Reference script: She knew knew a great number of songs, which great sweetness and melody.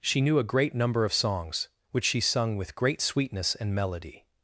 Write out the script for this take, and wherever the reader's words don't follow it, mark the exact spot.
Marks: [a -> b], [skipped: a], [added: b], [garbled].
She knew [skipped: knew] a great number of songs, which [added: she sung with] great sweetness and melody.